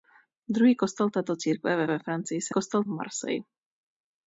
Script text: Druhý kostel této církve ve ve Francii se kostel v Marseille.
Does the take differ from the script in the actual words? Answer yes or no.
no